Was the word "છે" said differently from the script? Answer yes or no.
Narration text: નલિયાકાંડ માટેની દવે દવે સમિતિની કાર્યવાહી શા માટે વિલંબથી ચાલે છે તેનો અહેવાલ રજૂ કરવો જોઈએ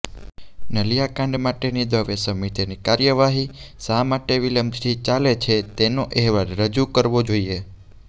no